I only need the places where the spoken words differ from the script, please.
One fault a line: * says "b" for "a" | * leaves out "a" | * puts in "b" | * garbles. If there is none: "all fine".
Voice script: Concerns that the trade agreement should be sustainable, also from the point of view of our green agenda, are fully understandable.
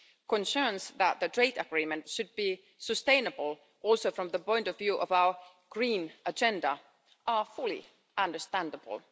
all fine